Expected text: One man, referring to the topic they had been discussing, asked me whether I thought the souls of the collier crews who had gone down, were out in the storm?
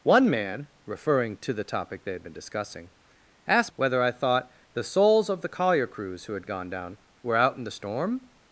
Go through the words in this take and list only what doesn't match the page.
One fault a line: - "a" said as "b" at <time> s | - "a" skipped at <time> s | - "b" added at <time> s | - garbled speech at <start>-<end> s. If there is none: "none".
- "me" skipped at 3.7 s